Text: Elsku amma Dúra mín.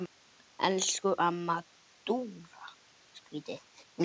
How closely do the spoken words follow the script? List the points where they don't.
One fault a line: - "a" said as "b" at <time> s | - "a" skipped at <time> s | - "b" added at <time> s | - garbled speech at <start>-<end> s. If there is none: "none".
none